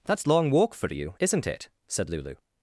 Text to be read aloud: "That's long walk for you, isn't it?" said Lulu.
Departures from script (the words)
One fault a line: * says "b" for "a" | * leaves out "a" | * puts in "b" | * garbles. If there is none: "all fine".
all fine